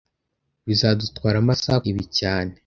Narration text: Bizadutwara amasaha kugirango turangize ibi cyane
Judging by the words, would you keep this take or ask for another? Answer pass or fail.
fail